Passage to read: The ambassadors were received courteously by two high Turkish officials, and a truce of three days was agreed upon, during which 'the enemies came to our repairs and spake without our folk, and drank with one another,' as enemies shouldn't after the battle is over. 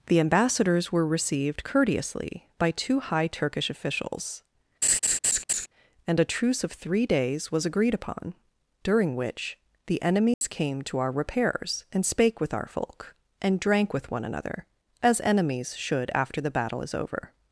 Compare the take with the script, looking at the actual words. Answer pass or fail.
fail